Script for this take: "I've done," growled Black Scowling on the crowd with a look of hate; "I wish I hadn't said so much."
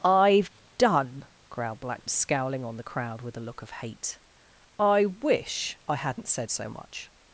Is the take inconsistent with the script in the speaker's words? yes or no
no